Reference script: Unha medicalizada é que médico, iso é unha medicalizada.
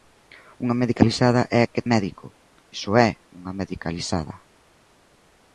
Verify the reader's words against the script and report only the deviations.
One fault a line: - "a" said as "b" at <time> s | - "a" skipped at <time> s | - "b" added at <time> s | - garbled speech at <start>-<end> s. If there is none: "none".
none